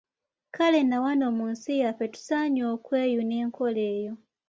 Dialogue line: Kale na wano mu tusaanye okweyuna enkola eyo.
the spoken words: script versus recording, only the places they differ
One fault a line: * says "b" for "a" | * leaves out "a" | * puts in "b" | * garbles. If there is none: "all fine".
* puts in "nsi yaffe"